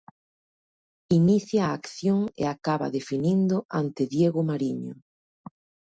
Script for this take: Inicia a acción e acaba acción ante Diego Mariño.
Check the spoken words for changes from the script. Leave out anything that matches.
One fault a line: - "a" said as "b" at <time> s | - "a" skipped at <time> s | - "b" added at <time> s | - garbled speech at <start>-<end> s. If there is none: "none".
- "acción" said as "definindo" at 3.0 s